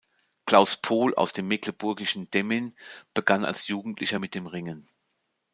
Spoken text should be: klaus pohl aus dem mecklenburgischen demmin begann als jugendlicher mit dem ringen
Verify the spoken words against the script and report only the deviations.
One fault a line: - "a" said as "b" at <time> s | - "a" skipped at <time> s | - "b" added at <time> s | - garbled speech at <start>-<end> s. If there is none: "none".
none